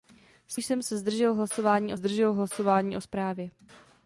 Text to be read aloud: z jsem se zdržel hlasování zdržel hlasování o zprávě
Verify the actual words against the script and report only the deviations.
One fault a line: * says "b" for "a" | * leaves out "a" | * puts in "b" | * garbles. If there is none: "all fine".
all fine